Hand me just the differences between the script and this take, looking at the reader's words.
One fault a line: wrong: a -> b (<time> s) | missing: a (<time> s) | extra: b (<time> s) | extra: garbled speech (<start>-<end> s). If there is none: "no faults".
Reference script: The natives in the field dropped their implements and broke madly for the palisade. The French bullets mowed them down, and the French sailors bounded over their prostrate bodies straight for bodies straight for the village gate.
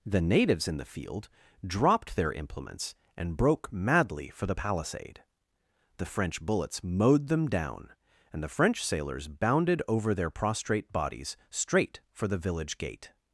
missing: bodies straight for (12.3 s)